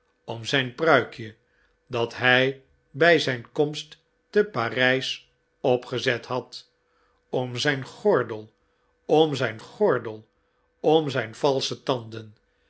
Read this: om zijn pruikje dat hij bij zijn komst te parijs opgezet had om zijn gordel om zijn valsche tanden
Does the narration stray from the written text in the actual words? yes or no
yes